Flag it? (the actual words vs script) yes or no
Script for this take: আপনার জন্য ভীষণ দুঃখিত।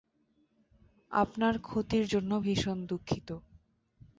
yes